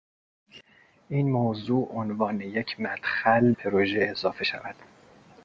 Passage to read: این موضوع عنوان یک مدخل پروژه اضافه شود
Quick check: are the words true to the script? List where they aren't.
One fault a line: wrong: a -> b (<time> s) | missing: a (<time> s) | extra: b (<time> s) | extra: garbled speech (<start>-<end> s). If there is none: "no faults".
no faults